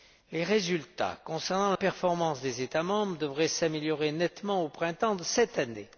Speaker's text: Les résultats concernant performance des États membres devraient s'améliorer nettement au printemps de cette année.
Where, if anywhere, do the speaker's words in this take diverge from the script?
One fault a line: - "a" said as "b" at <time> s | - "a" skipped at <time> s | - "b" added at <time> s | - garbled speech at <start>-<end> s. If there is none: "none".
none